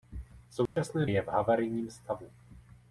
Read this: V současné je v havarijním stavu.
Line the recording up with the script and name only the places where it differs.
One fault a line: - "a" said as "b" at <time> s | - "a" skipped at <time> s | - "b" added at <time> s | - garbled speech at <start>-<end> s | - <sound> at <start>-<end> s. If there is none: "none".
- dropout at 0.7-0.8 s